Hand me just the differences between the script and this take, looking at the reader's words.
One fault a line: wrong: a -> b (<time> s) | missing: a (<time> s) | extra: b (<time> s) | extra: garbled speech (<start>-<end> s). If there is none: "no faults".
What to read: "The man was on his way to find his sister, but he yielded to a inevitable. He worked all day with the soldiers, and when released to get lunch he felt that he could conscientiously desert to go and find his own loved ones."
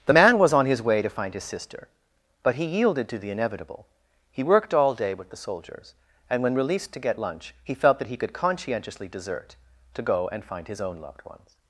wrong: a -> the (3.2 s)